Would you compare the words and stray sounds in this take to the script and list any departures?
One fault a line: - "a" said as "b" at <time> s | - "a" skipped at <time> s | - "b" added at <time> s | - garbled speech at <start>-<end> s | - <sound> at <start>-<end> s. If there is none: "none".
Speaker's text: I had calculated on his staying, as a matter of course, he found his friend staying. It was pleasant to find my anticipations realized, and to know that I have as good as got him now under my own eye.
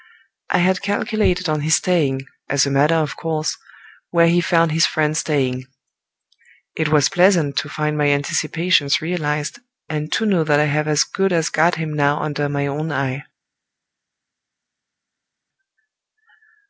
- "where" added at 4.1 s